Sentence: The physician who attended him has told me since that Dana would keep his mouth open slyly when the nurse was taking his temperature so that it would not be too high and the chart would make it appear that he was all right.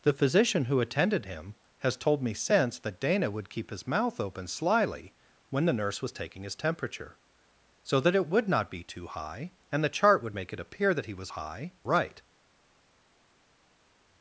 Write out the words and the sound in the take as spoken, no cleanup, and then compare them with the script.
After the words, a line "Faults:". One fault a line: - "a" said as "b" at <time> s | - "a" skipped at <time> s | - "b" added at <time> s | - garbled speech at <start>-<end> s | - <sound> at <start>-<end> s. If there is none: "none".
The physician who attended him has told me since that Dana would keep his mouth open slyly when the nurse was taking his temperature so that it would not be too high and the chart would make it appear that he was high right.
Faults:
- "all" said as "high" at 11.3 s